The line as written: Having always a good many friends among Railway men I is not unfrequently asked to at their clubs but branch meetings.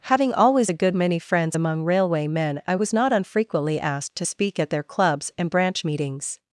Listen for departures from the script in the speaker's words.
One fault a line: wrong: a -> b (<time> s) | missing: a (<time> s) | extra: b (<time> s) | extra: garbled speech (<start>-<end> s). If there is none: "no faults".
wrong: is -> was (2.8 s)
extra: speak (4.2 s)
wrong: but -> and (5.4 s)